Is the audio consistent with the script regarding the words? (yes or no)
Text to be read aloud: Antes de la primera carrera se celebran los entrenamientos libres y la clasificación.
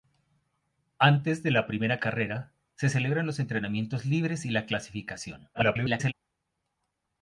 no